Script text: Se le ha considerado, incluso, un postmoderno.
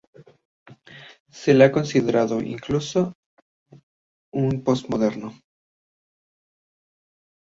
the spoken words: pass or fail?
pass